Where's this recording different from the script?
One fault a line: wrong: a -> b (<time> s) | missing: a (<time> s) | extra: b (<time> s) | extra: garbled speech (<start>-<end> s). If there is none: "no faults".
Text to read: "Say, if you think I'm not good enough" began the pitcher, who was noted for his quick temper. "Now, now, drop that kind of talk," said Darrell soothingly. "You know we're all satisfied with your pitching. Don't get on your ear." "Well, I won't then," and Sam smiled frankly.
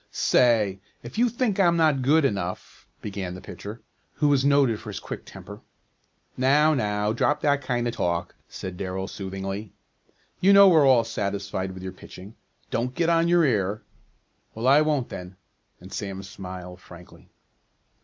no faults